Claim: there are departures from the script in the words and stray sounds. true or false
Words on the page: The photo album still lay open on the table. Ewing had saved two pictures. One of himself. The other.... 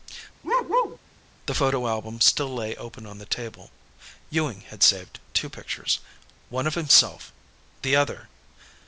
true